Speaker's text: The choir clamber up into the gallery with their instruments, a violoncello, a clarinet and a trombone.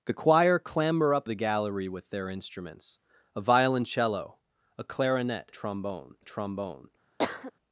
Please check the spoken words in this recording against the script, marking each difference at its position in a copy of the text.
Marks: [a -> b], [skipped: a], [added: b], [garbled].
The choir clamber up [skipped: into] the gallery with their instruments, a violoncello, a clarinet [and -> trombone] a trombone.